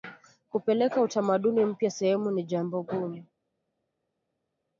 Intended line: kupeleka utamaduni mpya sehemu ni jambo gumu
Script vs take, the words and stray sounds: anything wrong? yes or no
no